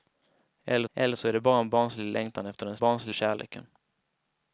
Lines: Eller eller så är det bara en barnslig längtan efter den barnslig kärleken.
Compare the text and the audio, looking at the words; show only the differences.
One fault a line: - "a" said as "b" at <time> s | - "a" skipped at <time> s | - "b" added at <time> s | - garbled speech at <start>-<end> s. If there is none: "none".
none